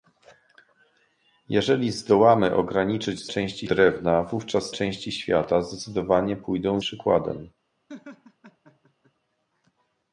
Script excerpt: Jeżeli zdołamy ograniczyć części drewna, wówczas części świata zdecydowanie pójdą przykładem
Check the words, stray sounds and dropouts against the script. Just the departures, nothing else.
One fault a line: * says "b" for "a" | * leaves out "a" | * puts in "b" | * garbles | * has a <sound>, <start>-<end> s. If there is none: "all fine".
* has a laugh, 7.9-9.1 s